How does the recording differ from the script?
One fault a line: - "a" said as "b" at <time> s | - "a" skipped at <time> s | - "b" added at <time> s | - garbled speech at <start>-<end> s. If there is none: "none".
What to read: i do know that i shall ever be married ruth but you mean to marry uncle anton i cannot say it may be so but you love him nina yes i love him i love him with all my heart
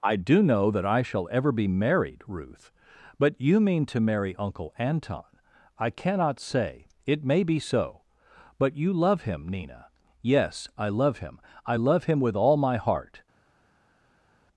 none